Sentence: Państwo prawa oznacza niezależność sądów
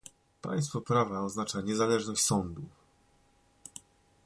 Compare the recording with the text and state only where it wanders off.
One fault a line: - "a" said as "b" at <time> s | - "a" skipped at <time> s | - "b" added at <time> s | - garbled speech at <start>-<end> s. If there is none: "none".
none